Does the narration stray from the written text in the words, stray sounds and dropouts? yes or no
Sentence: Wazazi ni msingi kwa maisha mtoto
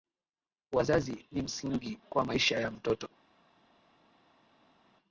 yes